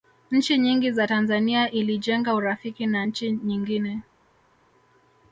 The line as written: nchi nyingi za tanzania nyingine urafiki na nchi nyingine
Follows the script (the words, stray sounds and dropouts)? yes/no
no